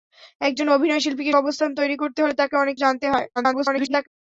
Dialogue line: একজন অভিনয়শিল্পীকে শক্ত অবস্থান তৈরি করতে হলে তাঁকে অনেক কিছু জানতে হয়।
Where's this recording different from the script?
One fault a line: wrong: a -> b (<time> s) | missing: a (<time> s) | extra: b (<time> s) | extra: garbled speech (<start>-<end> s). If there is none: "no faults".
missing: শক্ত (1.3 s)
missing: কিছু (2.7 s)
extra: garbled speech (3.4-4.1 s)